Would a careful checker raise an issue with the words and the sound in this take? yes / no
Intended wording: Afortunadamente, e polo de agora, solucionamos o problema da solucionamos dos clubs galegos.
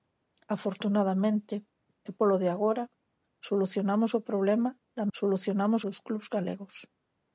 no